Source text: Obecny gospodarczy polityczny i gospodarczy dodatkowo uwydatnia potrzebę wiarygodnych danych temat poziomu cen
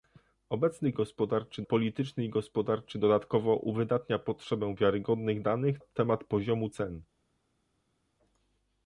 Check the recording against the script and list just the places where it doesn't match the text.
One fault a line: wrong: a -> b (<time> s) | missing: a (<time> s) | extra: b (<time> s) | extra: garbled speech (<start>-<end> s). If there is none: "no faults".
no faults